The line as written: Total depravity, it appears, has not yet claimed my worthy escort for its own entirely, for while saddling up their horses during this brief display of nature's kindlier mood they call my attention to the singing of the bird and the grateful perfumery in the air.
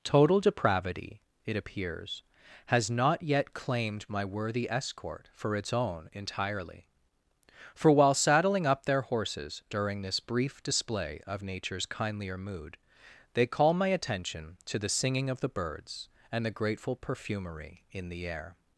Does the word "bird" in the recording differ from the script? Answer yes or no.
yes